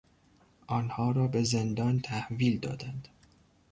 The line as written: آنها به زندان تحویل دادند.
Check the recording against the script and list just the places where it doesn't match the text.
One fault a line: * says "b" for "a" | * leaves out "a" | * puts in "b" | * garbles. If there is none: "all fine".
* puts in "را"